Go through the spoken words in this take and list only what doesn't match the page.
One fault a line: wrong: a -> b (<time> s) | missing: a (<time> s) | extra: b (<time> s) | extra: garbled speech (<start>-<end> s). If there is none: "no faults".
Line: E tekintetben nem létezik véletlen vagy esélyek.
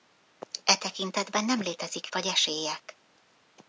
missing: véletlen (2.1 s)